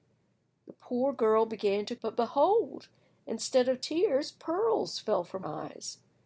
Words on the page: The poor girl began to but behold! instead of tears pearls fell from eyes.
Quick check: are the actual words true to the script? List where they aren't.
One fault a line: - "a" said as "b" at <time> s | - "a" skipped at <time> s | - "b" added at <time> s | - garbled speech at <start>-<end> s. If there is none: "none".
none